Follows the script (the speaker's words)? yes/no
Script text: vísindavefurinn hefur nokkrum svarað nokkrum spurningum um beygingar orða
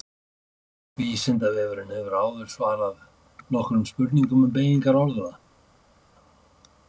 no